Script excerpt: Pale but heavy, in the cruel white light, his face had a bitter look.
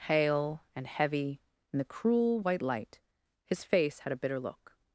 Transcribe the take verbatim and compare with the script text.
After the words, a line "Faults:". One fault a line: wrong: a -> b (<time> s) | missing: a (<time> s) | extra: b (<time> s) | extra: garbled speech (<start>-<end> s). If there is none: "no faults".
Pale and heavy, in the cruel white light, his face had a bitter look.
Faults:
wrong: but -> and (0.8 s)